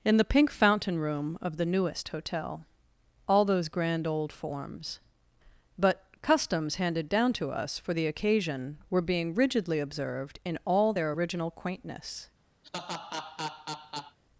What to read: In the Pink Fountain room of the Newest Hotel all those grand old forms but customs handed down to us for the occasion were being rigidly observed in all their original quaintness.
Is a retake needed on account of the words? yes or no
no